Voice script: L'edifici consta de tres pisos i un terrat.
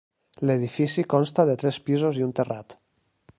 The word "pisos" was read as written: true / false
true